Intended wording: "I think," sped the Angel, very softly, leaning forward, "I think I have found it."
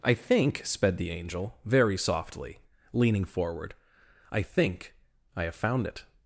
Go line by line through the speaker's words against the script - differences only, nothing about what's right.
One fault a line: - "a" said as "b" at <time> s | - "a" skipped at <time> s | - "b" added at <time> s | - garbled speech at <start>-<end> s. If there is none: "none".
none